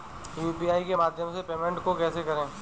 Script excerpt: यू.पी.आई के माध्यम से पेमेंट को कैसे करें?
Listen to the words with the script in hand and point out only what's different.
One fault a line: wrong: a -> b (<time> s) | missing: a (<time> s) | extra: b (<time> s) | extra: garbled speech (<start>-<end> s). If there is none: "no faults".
no faults